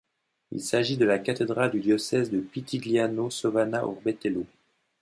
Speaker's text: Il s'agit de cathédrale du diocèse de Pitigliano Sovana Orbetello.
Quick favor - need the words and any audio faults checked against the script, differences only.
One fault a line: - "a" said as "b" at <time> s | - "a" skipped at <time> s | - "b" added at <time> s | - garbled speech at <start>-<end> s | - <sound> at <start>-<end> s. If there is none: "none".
- "la" added at 1.1 s